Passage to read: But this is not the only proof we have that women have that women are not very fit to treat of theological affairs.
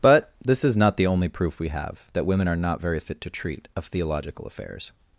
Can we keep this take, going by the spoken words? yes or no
no